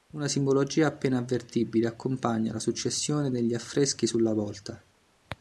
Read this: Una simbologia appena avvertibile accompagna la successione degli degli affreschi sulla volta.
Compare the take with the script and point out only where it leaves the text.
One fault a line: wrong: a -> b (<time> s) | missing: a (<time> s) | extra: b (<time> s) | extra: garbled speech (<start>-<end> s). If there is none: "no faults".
missing: degli (3.5 s)